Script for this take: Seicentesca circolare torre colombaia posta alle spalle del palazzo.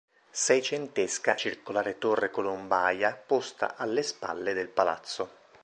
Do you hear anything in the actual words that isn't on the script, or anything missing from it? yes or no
no